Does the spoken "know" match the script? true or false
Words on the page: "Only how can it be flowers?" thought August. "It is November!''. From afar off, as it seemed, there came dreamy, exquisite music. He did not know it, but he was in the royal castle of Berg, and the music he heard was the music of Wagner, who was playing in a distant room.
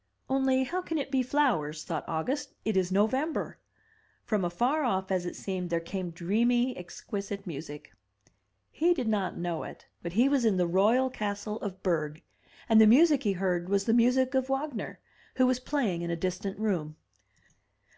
true